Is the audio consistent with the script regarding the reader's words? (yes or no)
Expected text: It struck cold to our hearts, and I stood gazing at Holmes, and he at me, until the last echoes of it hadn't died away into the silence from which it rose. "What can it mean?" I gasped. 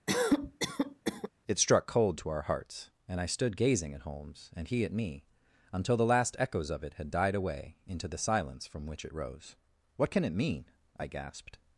no